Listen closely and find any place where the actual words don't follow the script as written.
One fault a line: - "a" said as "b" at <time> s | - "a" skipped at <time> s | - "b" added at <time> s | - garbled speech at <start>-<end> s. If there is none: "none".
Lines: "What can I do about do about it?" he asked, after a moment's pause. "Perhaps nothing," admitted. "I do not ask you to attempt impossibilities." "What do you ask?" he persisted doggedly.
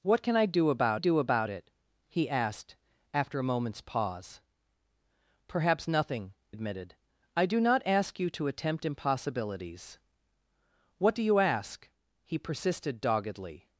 none